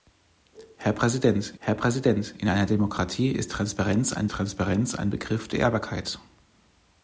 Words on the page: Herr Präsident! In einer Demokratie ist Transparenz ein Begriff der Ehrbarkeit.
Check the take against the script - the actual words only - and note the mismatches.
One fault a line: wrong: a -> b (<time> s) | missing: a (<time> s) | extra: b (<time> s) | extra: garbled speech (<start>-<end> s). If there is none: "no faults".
extra: herr Präsident (1.6 s)
extra: Transparenz ein (4.3 s)